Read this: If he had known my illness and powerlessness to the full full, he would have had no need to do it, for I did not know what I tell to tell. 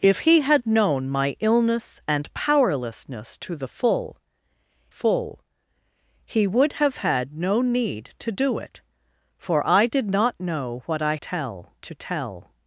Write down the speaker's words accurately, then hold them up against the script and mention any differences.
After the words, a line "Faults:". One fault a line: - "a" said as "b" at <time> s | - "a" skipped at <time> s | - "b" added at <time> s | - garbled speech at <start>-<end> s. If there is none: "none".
If he had known my illness and powerlessness to the full full, he would have had no need to do it, for I did not know what I tell to tell.
Faults:
none